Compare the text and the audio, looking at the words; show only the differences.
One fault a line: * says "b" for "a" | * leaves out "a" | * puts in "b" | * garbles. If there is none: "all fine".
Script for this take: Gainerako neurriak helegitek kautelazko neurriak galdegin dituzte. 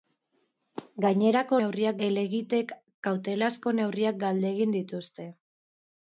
all fine